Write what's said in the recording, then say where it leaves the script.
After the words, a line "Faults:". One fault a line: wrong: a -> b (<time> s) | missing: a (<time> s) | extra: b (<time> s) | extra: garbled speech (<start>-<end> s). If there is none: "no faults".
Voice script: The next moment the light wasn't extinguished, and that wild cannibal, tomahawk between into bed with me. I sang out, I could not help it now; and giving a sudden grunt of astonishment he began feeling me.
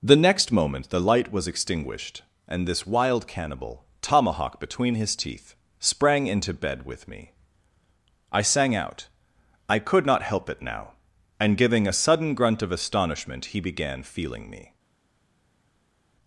The next moment the light was extinguished, and this wild cannibal, tomahawk between his teeth, sprang into bed with me. I sang out, I could not help it now; and giving a sudden grunt of astonishment he began feeling me.
Faults:
wrong: wasn't -> was (1.3 s)
wrong: that -> this (2.7 s)
extra: his teeth sprang (5.0 s)